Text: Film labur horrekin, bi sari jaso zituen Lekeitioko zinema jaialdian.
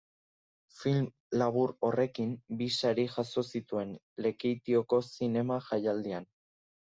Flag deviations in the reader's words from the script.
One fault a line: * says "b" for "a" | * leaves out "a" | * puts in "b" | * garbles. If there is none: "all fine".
all fine